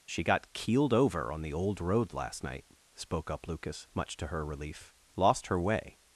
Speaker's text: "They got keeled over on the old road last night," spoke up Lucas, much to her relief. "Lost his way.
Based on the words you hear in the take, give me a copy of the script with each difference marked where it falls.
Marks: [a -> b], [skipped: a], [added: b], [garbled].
["They -> She] got keeled over on the old road last night," spoke up Lucas, much to her relief. "Lost [his -> her] way.